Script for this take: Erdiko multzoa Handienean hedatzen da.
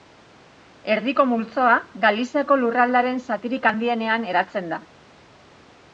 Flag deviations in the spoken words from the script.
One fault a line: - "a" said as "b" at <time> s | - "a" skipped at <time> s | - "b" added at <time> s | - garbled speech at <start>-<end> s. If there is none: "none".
- "Galiziako lurraldearen zatirik" added at 2.1 s